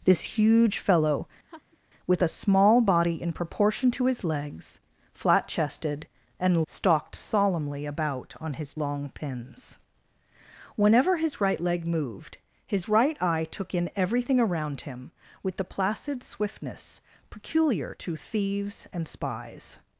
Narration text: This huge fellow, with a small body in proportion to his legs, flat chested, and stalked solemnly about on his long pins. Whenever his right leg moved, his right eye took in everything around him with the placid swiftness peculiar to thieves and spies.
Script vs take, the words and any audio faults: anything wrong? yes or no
yes